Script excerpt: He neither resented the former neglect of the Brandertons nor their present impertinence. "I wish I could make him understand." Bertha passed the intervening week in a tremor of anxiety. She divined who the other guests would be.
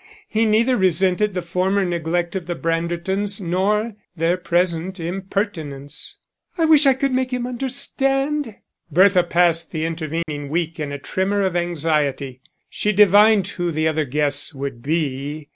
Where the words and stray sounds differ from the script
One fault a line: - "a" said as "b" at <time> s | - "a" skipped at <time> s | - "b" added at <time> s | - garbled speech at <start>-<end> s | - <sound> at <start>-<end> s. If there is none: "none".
- dropout at 10.2-10.3 s